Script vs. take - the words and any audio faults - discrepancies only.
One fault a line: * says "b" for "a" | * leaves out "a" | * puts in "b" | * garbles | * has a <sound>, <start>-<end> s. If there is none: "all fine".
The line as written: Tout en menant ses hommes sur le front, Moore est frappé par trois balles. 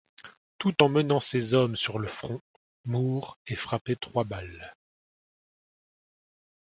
* leaves out "par"